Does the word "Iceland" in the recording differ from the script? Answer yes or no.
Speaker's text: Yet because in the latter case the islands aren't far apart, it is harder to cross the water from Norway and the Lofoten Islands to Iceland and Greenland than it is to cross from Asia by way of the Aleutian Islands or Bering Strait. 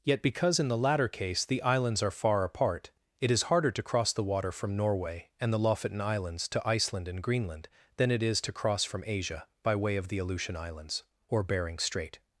no